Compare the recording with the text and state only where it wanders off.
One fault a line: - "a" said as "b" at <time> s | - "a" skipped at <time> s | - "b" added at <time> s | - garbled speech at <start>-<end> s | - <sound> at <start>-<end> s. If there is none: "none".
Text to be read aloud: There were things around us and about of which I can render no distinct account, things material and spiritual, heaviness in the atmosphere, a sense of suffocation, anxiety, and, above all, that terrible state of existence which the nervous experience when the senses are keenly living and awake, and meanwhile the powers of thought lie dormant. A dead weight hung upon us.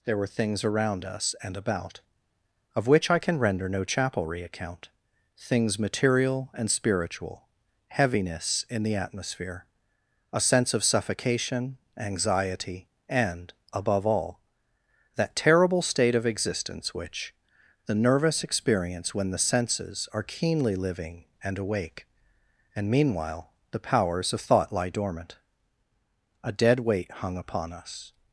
- "distinct" said as "chapelry" at 3.8 s